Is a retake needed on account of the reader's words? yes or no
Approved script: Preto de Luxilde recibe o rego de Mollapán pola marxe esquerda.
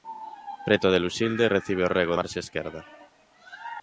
yes